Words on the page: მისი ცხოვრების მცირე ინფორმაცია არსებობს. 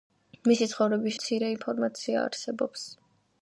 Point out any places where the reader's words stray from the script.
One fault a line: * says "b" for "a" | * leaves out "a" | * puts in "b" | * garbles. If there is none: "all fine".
all fine